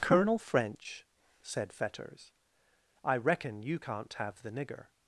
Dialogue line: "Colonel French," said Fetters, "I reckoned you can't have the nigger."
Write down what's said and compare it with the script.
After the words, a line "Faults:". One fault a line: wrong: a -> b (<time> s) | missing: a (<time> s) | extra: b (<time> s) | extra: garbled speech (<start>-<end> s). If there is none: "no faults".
"Colonel French," said Fetters, "I reckon you can't have the nigger."
Faults:
wrong: reckoned -> reckon (3.2 s)